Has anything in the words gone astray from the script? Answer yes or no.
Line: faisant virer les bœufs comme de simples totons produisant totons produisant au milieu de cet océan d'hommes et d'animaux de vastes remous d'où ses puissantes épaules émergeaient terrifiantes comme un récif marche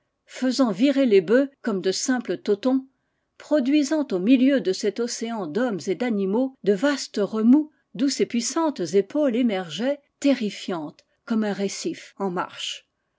yes